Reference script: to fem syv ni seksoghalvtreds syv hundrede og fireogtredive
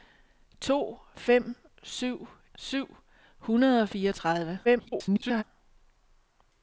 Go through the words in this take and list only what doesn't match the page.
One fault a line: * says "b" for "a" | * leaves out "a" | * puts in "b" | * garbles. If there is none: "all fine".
* leaves out "ni seksoghalvtreds"
* garbles